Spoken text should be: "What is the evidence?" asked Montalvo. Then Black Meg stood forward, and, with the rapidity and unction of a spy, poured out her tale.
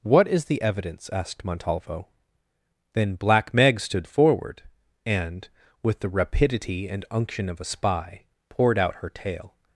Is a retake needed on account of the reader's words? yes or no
no